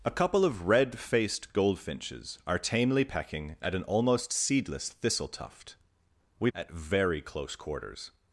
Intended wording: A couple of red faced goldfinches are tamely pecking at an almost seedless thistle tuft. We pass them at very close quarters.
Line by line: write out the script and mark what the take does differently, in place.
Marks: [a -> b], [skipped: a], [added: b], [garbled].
A couple of red faced goldfinches are tamely pecking at an almost seedless thistle tuft. We [skipped: pass them] at very close quarters.